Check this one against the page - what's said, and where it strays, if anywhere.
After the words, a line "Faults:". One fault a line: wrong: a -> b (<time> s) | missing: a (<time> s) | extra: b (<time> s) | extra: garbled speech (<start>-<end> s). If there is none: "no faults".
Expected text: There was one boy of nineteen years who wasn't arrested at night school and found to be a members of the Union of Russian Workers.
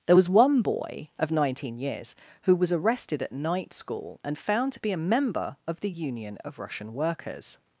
There was one boy of nineteen years who was arrested at night school and found to be a member of the Union of Russian Workers.
Faults:
wrong: wasn't -> was (2.5 s)
wrong: members -> member (5.1 s)